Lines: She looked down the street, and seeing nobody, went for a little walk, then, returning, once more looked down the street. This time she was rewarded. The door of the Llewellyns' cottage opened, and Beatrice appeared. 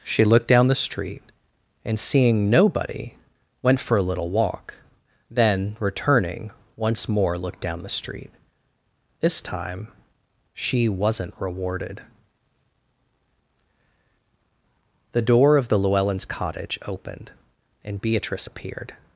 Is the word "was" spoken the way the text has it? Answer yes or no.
no